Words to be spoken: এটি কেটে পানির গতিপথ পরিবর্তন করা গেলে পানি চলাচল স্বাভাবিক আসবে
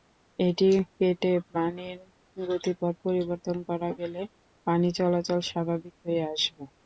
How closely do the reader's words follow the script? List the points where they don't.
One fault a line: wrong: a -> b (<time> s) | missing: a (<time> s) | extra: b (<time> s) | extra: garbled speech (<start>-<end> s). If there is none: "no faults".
extra: হয়ে (6.0 s)